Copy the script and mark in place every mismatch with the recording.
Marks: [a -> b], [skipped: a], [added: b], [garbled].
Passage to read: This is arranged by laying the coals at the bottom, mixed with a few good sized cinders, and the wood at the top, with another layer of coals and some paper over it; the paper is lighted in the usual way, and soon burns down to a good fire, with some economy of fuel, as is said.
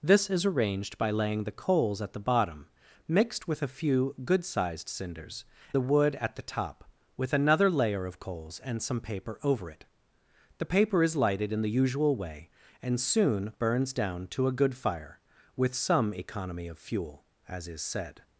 This is arranged by laying the coals at the bottom, mixed with a few good sized cinders, [skipped: and] the wood at the top, with another layer of coals and some paper over it; the paper is lighted in the usual way, and soon burns down to a good fire, with some economy of fuel, as is said.